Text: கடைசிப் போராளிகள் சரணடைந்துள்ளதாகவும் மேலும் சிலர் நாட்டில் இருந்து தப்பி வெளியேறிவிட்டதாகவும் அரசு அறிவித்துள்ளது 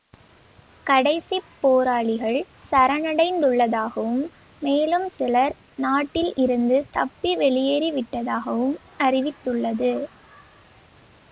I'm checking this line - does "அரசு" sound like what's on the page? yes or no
no